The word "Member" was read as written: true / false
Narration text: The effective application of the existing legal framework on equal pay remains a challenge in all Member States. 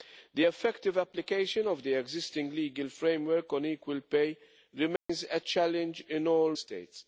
false